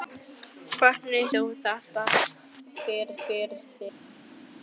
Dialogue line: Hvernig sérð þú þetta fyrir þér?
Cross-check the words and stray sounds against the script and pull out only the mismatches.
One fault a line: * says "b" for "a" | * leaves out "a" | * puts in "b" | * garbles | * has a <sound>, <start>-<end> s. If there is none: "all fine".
* leaves out "sérð"
* puts in "fyrir"